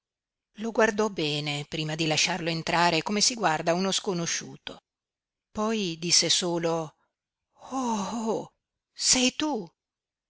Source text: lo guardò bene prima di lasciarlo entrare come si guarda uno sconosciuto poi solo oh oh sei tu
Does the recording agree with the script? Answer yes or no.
no